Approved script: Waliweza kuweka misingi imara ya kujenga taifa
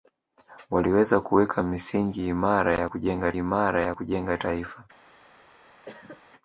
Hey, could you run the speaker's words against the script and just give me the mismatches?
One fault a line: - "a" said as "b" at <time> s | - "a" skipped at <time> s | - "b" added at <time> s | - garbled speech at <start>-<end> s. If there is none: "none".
- "imara ya kujenga" added at 3.4 s